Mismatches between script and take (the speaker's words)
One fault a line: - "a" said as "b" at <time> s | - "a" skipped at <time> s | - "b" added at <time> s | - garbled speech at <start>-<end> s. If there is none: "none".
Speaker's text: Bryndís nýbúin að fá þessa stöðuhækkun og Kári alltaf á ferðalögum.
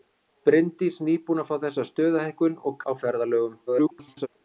- "Kári alltaf" skipped at 2.8 s
- garbled speech at 3.7-4.3 s